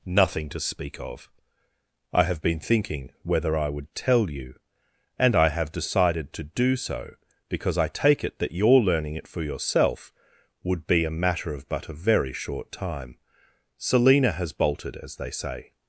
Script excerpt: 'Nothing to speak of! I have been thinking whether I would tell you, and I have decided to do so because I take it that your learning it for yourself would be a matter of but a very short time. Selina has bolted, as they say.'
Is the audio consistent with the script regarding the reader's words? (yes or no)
yes